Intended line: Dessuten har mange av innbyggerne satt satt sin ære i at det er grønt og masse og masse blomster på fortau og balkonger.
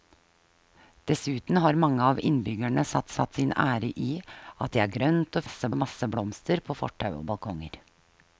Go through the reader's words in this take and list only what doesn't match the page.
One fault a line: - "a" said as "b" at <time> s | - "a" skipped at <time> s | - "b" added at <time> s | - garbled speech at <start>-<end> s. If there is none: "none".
none